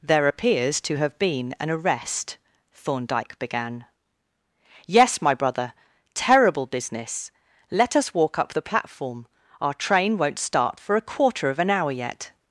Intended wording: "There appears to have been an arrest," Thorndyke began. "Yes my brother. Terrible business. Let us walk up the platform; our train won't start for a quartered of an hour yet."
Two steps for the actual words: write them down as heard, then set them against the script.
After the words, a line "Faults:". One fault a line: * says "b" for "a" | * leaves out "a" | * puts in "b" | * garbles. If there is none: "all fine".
"There appears to have been an arrest," Thorndyke began. "Yes my brother. Terrible business. Let us walk up the platform; our train won't start for a quarter of an hour yet."
Faults:
* says "quarter" for "quartered"